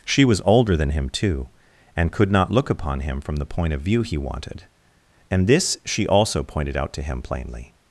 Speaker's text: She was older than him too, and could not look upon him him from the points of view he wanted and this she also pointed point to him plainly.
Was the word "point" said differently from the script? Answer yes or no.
yes